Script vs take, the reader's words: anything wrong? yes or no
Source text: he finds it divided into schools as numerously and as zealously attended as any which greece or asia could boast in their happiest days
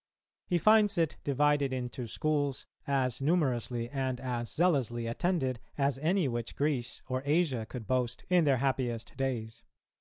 no